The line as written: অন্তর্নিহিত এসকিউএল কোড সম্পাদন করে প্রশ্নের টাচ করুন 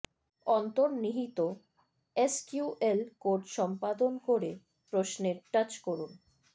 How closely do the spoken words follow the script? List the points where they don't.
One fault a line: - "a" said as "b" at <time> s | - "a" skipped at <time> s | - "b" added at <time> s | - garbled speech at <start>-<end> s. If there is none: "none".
none